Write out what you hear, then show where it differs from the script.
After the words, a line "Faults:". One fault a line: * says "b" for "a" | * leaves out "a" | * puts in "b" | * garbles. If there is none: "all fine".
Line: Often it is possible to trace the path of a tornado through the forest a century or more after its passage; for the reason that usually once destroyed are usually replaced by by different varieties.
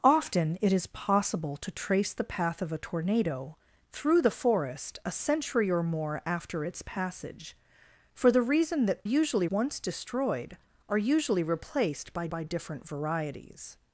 Often it is possible to trace the path of a tornado through the forest a century or more after its passage; for the reason that usually once destroyed are usually replaced by by different varieties.
Faults:
all fine